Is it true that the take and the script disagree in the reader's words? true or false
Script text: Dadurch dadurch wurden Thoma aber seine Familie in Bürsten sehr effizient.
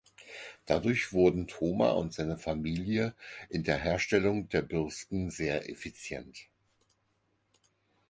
true